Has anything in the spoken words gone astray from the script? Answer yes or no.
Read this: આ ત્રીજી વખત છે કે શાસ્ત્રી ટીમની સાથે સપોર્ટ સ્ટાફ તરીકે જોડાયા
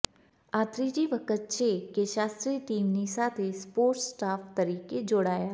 no